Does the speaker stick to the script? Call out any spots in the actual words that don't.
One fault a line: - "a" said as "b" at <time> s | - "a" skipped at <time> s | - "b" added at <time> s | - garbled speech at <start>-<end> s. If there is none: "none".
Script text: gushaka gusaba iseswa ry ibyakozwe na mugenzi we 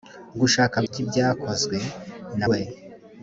- "gusaba iseswa" skipped at 0.8 s
- "mugenzi" skipped at 2.5 s